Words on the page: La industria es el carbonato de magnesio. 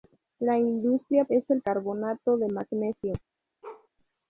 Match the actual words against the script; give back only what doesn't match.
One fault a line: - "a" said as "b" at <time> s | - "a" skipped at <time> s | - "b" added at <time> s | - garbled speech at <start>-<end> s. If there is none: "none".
none